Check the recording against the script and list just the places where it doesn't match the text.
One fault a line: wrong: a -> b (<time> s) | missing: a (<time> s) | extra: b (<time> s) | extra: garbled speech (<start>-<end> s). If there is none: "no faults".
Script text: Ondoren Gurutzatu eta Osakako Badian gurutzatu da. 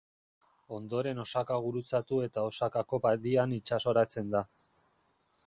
extra: Osaka (1.2 s)
wrong: gurutzatu -> itsasoratzen (3.6 s)